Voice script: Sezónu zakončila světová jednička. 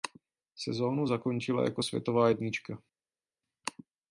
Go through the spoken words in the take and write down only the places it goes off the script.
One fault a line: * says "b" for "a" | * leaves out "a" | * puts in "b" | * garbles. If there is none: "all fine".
* puts in "jako"